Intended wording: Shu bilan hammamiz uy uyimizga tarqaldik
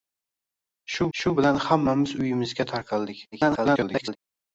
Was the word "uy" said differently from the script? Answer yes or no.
yes